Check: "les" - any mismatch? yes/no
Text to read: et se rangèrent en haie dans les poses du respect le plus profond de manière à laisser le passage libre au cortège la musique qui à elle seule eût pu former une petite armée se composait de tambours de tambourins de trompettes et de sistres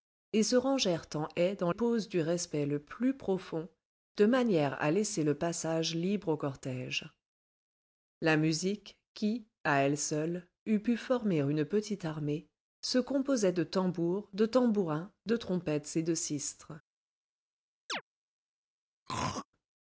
yes